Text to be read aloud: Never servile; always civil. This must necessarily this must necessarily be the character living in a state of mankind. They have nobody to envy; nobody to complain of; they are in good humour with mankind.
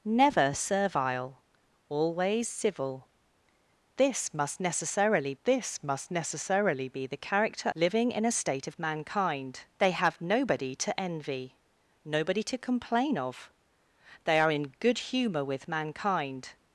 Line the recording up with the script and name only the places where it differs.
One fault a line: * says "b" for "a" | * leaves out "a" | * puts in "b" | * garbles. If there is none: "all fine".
all fine